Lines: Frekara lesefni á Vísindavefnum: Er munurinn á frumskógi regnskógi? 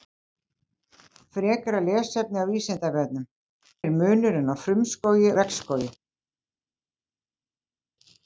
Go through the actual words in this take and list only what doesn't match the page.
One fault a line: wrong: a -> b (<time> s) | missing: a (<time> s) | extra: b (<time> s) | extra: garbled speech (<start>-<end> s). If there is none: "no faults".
no faults